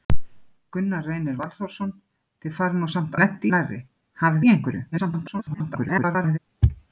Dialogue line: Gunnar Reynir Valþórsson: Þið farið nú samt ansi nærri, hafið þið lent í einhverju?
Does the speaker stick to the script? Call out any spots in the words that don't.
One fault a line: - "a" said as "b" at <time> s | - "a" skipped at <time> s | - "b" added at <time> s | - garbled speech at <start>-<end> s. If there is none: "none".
- "ansi" said as "lent" at 3.2 s
- "þið lent" skipped at 4.5 s
- garbled speech at 4.9-6.4 s